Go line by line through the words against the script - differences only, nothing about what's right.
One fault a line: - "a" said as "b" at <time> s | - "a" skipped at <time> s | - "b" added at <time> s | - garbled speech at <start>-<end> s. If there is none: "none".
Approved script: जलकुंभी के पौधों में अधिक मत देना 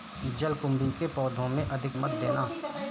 none